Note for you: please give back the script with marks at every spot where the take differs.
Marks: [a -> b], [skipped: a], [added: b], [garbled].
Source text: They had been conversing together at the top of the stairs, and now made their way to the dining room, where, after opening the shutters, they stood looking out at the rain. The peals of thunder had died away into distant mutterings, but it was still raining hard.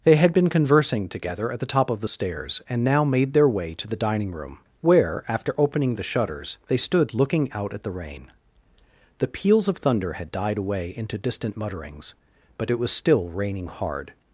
They had been conversing together at the top of the stairs, and now made their way to the dining room, where, after opening the shutters, they stood looking out at the rain. The peals of thunder had died away into distant mutterings, but it was still raining hard.